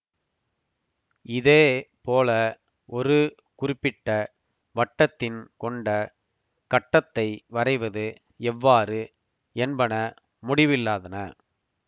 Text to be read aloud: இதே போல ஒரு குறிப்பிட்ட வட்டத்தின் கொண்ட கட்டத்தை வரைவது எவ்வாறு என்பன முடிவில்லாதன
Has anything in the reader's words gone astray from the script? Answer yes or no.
no